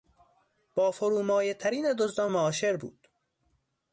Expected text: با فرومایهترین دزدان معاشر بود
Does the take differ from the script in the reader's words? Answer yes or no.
no